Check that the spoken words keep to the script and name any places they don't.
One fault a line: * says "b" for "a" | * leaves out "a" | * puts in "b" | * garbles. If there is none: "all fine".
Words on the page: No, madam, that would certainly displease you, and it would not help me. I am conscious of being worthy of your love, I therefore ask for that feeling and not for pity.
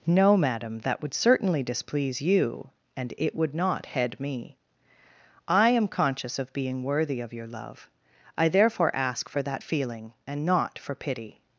* says "head" for "help"